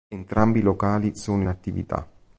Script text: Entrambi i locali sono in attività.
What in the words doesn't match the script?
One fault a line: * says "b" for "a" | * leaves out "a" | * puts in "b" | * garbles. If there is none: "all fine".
* leaves out "in"